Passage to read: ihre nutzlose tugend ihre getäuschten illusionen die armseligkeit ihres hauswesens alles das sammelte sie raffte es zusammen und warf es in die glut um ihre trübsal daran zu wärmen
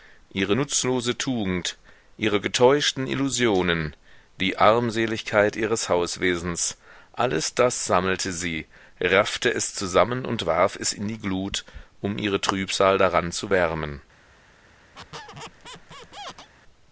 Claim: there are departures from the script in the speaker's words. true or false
false